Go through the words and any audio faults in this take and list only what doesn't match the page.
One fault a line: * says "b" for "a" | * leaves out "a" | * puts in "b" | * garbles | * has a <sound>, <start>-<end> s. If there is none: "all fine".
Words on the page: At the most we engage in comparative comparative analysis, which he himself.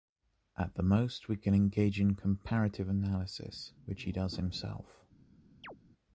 * puts in "can"
* leaves out "comparative"
* puts in "does"
* has a chirp, 5.6-5.8 s